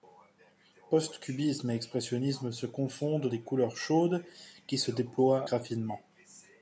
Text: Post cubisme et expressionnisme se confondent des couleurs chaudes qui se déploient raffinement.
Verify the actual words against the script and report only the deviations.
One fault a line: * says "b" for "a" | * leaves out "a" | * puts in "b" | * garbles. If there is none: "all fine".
all fine